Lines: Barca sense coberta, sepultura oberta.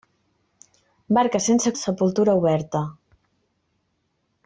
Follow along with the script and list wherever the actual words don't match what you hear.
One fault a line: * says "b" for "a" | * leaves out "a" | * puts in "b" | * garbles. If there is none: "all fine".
* leaves out "coberta"